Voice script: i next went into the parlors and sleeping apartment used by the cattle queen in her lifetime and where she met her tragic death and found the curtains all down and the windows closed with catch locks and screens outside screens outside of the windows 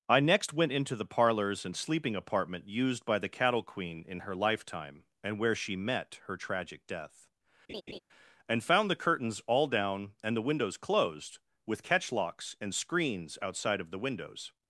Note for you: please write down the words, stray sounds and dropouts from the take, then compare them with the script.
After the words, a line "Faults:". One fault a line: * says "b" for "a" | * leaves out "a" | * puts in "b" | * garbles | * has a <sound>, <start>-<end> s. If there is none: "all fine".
i next went into the parlors and sleeping apartment used by the cattle queen in her lifetime and where she met her tragic death and found the curtains all down and the windows closed with catch locks and screens outside of the windows
Faults:
* has a laugh, 7.7-8.0 s
* leaves out "screens outside"